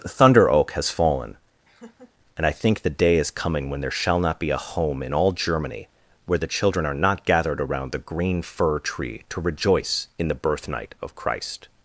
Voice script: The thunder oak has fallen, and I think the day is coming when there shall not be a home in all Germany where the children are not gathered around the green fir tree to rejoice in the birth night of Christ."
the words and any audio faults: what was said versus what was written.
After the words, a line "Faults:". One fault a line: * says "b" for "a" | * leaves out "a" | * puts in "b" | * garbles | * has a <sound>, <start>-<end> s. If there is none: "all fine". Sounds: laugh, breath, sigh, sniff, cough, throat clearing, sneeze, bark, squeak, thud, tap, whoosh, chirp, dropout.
The thunder oak has fallen, and I think the day is coming when there shall not be a home in all Germany where the children are not gathered around the green fir tree to rejoice in the birth night of Christ."
Faults:
* has a laugh, 1.6-2.1 s